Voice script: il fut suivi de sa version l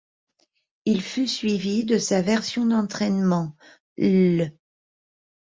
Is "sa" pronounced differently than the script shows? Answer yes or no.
no